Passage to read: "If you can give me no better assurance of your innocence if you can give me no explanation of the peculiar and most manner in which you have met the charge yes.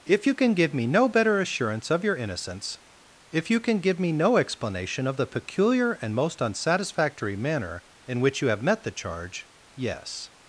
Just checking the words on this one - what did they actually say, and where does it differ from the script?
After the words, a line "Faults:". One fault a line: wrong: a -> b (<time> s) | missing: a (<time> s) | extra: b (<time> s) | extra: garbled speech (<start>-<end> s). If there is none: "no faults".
"If you can give me no better assurance of your innocence if you can give me no explanation of the peculiar and most unsatisfactory manner in which you have met the charge yes.
Faults:
extra: unsatisfactory (6.4 s)